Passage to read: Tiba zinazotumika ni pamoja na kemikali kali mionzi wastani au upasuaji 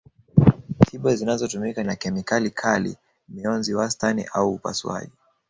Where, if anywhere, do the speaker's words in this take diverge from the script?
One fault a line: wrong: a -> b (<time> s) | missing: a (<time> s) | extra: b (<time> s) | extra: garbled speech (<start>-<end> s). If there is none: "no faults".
missing: ni pamoja (1.8 s)